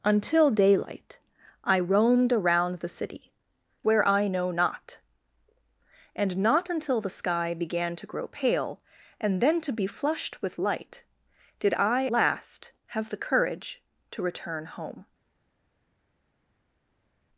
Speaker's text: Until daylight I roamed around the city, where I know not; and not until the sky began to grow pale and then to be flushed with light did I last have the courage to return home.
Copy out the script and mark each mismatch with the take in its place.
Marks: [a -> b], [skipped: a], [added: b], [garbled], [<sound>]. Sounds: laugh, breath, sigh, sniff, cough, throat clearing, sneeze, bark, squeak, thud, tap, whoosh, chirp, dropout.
Until daylight I roamed around the city, where I know not; and not until the sky began to grow pale and then to be flushed with light did I last have the courage to return home.